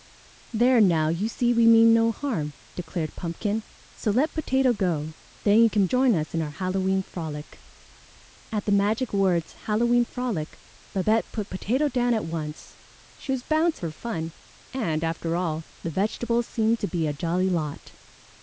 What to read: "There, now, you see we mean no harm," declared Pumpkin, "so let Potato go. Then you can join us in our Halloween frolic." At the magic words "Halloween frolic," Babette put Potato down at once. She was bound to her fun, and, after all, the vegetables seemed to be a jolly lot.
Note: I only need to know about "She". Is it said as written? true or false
true